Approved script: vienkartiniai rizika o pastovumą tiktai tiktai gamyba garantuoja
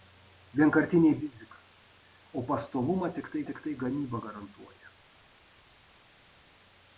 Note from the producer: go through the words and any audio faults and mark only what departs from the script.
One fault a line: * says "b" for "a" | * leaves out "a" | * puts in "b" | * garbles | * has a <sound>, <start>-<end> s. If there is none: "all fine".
all fine